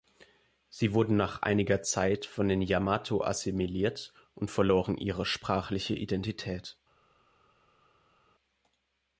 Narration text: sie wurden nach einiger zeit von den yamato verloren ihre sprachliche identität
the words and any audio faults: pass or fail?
fail